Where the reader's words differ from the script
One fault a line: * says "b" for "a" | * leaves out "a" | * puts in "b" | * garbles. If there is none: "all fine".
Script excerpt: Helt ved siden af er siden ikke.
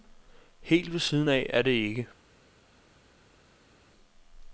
* says "det" for "siden"